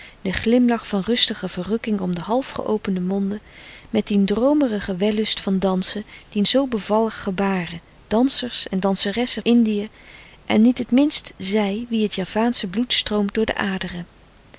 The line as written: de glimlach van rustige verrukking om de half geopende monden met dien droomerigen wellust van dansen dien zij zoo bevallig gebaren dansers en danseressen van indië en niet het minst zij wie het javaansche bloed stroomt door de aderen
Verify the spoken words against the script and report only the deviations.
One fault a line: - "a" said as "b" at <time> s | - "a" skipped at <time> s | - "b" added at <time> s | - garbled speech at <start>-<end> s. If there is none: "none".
- "zij" skipped at 6.5 s
- "van" skipped at 9.4 s